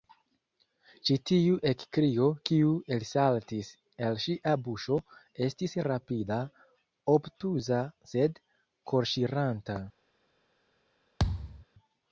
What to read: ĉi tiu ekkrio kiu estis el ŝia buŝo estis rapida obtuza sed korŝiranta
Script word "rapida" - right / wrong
right